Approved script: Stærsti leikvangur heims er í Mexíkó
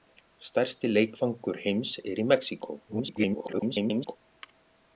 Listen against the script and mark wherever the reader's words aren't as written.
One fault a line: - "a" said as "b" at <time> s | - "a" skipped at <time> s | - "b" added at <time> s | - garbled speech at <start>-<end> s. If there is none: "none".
- garbled speech at 2.9-4.2 s